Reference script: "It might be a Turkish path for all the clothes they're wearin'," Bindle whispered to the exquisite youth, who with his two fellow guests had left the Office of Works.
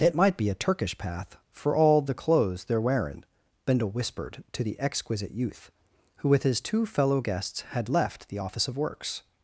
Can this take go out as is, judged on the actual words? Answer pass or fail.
pass